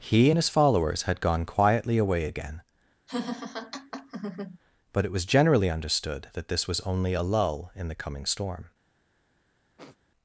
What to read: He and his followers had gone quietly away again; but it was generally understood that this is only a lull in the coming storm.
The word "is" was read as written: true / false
false